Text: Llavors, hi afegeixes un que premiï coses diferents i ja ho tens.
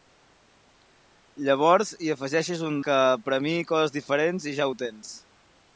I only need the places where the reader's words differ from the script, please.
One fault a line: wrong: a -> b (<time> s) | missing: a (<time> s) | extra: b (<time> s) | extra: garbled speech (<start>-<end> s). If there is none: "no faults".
no faults